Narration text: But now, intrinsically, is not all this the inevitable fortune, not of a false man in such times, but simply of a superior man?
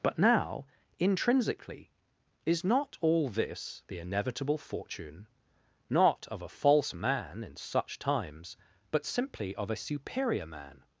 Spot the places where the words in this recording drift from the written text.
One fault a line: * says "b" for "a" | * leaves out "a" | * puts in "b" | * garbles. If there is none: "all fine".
all fine